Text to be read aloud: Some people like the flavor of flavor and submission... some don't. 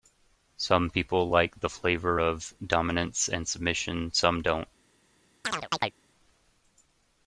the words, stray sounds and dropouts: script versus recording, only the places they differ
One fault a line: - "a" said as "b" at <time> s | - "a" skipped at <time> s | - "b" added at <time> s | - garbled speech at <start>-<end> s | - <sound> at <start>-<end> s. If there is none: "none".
- "flavor" said as "dominance" at 2.6 s
- chirp at 5.4-5.9 s